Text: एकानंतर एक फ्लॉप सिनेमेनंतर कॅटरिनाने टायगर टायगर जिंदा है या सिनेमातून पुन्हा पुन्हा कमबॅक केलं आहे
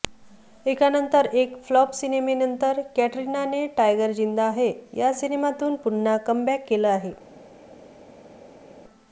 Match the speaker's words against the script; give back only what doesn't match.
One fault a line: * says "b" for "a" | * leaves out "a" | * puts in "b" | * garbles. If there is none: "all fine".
* leaves out "टायगर"
* leaves out "पुन्हा"